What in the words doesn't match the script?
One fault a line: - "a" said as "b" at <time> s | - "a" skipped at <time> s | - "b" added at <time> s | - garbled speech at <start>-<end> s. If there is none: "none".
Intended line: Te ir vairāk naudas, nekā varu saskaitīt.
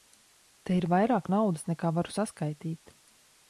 none